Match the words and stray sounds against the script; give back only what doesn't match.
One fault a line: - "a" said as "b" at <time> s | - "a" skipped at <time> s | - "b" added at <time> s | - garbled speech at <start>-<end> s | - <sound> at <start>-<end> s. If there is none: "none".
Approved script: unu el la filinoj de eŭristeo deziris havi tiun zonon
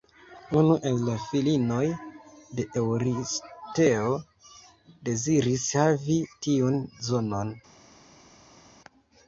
none